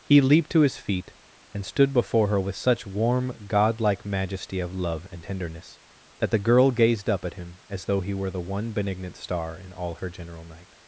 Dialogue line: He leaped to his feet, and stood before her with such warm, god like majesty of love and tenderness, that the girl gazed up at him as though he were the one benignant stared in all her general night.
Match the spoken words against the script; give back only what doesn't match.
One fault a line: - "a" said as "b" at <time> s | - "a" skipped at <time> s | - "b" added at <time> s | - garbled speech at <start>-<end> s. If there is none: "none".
- "stared" said as "star" at 9.2 s